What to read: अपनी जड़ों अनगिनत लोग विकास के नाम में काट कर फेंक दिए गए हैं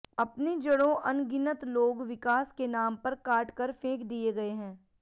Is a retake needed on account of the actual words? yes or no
yes